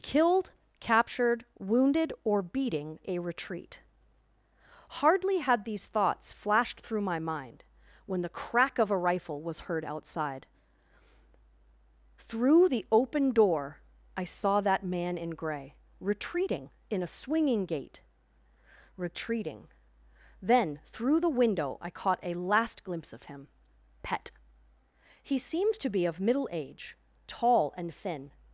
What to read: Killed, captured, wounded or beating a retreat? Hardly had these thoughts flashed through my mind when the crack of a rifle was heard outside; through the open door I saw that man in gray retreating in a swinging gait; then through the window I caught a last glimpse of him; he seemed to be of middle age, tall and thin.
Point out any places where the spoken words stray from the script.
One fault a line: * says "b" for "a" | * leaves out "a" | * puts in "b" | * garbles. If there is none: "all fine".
* puts in "retreating"
* puts in "pet"